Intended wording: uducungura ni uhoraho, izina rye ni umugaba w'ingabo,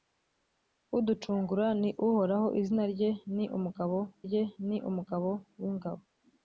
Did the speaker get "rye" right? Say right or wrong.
right